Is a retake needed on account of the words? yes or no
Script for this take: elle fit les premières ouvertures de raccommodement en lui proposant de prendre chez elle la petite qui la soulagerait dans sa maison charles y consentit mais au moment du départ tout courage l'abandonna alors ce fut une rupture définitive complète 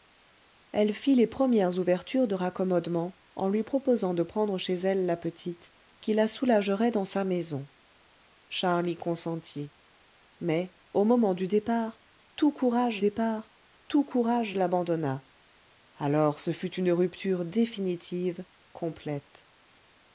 yes